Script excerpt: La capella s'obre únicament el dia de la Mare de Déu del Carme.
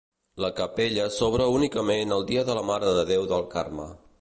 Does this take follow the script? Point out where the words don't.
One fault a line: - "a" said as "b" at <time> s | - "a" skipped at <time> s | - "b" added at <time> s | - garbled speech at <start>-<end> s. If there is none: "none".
none